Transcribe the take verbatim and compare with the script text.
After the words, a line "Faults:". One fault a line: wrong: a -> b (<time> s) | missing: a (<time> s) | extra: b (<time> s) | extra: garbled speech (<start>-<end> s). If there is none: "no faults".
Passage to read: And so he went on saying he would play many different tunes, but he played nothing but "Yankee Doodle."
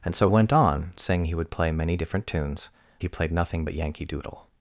And so went on saying he would play many different tunes, he played nothing but "Yankee Doodle."
Faults:
missing: he (0.3 s)
missing: but (2.7 s)